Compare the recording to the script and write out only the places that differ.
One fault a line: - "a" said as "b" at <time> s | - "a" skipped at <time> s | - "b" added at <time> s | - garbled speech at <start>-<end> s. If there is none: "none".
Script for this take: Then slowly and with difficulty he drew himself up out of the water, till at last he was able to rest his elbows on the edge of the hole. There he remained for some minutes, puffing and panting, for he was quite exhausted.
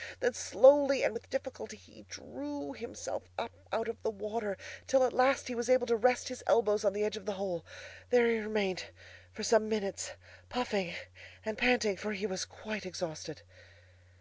none